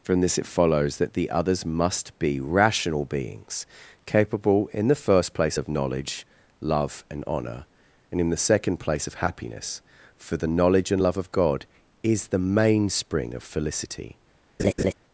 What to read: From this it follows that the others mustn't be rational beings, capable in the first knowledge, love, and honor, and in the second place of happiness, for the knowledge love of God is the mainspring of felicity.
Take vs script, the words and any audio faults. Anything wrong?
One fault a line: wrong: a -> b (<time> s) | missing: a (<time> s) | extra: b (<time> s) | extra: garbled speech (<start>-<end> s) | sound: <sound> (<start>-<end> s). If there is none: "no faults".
wrong: mustn't -> must (1.6 s)
extra: place of (5.3 s)
extra: and (10.9 s)
sound: laugh (14.6-14.9 s)